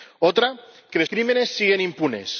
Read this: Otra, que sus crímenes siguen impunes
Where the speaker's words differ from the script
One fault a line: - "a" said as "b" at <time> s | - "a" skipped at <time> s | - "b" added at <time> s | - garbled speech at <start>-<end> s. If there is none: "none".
- "sus" skipped at 1.0 s